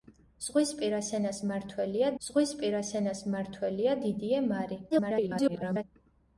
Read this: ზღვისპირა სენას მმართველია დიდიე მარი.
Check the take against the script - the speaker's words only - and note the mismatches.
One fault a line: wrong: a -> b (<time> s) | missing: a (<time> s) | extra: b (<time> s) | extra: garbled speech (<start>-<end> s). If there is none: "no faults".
extra: ზღვისპირა სენას მმართველია (2.3 s)
extra: garbled speech (4.9-5.8 s)